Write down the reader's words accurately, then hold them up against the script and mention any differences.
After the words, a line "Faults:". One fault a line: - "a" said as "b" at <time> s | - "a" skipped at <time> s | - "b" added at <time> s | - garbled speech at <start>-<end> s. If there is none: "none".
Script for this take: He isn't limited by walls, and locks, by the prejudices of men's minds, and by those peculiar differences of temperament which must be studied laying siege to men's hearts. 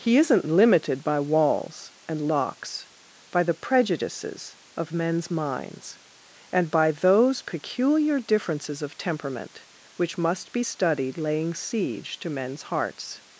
He isn't limited by walls, and locks, by the prejudices of men's minds, and by those peculiar differences of temperament which must be studied laying siege to men's hearts.
Faults:
none